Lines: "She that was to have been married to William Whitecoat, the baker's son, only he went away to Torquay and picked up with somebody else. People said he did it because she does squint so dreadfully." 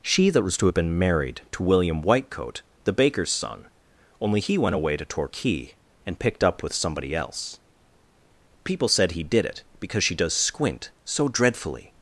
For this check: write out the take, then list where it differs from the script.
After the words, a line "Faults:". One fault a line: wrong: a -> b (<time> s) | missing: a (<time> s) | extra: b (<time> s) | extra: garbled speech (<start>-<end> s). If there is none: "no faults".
"She that was to have been married to William Whitecoat, the baker's son, only he went away to Torquay and picked up with somebody else. People said he did it because she does squint so dreadfully."
Faults:
no faults